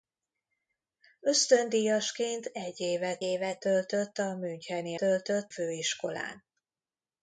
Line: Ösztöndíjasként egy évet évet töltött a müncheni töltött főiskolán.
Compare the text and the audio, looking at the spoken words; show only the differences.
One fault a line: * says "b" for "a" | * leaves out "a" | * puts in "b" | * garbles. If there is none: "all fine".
all fine